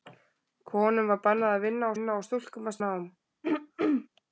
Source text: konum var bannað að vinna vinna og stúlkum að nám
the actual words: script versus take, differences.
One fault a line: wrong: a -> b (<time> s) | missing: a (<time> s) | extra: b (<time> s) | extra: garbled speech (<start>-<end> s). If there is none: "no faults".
no faults